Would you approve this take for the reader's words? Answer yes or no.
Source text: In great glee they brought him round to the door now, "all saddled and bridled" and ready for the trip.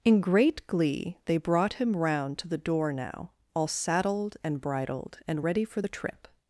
yes